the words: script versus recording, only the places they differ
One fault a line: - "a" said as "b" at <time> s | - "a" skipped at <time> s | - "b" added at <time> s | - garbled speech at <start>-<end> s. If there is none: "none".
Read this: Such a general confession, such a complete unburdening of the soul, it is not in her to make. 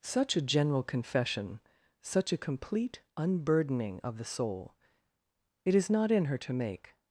none